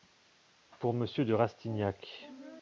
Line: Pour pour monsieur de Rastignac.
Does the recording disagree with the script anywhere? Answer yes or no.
yes